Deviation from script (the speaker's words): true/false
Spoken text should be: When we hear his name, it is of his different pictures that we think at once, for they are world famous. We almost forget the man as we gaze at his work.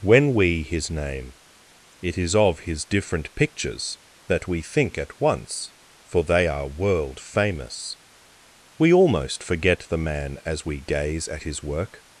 true